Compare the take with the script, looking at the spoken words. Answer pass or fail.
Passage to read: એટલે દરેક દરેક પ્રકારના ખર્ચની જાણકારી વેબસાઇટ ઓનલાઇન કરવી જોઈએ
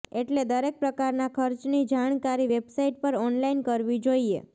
fail